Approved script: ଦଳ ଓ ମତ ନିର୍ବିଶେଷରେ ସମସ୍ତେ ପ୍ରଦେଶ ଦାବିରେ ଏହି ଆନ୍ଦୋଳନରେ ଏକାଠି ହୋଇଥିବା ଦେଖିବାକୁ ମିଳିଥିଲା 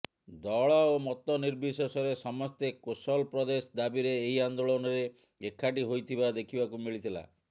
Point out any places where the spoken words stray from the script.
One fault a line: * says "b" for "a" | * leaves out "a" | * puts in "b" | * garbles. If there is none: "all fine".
* puts in "କୋଶଲ"